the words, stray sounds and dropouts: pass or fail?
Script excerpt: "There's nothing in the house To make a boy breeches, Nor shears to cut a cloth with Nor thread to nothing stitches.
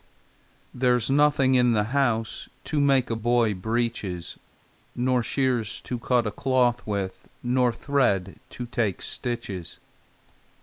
fail